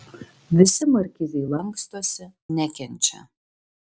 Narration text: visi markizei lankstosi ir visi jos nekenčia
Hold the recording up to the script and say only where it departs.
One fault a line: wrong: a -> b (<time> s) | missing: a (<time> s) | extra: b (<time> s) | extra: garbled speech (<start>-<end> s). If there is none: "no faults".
missing: ir visi jos (2.3 s)